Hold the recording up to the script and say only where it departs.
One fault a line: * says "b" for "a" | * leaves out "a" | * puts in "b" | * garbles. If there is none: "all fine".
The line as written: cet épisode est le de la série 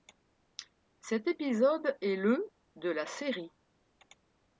all fine